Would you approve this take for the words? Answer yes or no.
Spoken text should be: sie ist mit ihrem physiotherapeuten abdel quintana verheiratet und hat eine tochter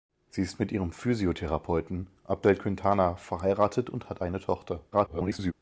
no